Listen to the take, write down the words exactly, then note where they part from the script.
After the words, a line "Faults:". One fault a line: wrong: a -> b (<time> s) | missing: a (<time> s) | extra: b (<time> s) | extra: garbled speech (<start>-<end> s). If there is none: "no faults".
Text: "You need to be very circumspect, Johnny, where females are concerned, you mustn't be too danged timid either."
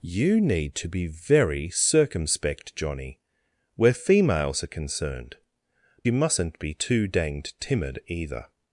"You need to be very circumspect, Johnny, where females are concerned, you mustn't be too danged timid either."
Faults:
no faults